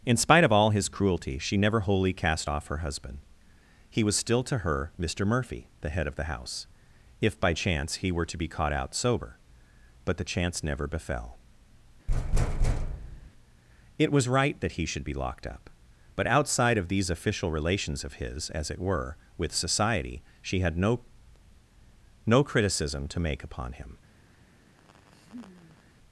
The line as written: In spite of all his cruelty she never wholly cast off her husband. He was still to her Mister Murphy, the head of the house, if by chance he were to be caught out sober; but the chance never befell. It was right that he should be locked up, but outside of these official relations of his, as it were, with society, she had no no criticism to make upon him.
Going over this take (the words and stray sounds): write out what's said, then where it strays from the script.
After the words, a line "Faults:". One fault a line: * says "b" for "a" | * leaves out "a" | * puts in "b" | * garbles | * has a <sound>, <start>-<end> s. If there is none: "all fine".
In spite of all his cruelty she never wholly cast off her husband. He was still to her Mister Murphy, the head of the house, if by chance he were to be caught out sober; but the chance never befell. It was right that he should be locked up, but outside of these official relations of his, as it were, with society, she had no no criticism to make upon him.
Faults:
* has a thud, 12.1-13.3 s
* has a laugh, 24.8-25.9 s